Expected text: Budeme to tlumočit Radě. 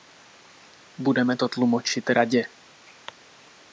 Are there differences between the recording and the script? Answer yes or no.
no